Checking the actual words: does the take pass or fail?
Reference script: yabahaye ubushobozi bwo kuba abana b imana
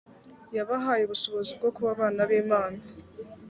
pass